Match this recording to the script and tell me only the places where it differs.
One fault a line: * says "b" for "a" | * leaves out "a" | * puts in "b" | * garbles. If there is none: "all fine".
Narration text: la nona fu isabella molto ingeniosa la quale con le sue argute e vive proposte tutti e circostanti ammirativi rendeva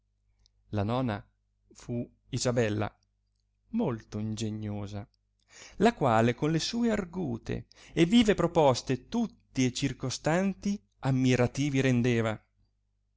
all fine